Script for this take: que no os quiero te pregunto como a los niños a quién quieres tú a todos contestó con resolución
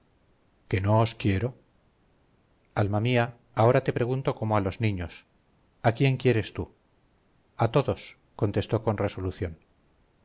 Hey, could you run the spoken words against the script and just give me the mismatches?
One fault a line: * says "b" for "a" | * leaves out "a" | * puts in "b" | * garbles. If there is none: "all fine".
* puts in "alma mía ahora"